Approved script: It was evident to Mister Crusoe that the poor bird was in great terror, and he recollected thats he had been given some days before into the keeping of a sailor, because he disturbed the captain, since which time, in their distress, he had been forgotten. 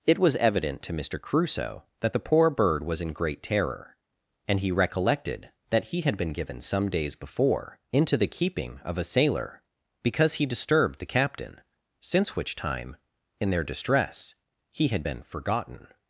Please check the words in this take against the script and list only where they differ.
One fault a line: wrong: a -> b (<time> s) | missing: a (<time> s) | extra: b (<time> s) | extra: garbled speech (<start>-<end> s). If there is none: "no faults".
wrong: thats -> that (5.7 s)